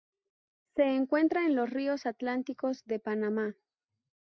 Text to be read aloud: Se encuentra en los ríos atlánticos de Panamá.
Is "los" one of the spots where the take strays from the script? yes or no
no